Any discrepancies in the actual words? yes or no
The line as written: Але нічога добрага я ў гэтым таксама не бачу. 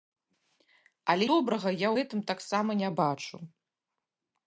yes